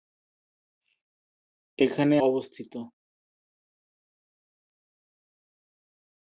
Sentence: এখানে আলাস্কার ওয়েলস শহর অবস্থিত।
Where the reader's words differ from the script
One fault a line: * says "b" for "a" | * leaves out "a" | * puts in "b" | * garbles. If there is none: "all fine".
* leaves out "আলাস্কার ওয়েলস শহর"